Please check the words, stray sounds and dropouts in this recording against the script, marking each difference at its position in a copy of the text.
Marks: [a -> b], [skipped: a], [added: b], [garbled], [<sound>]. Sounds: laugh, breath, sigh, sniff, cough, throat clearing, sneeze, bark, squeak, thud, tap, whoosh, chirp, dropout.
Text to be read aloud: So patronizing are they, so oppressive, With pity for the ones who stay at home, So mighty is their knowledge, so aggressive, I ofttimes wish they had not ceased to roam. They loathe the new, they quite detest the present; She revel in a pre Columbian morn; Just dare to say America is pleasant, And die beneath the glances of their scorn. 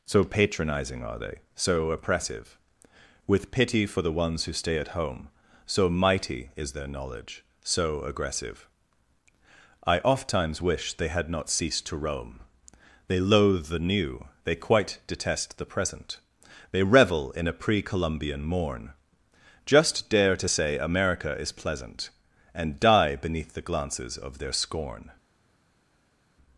So patronizing are they, so oppressive, With pity for the ones who stay at home, So mighty is their knowledge, so aggressive, I ofttimes wish they had not ceased to roam. They loathe the new, they quite detest the present; [She -> They] revel in a pre Columbian morn; Just dare to say America is pleasant, And die beneath the glances of their scorn.